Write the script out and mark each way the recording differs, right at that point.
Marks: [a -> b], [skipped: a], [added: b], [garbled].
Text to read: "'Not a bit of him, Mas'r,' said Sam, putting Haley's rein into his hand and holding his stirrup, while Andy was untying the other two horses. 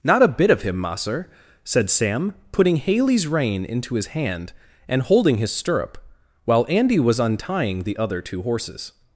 "'Not a bit of him, Mas'r,' said Sam, putting Haley's rein into his hand and holding his stirrup, while Andy was untying the other two horses.